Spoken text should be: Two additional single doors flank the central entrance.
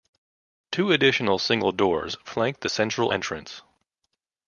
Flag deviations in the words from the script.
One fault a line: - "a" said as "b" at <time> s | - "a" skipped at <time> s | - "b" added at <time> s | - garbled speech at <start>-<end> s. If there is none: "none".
none